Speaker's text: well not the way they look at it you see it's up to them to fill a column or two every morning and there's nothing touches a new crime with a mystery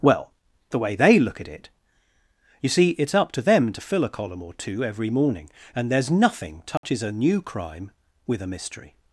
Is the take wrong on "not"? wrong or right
wrong